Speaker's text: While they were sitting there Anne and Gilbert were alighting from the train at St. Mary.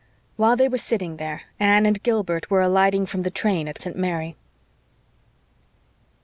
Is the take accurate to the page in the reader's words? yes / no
yes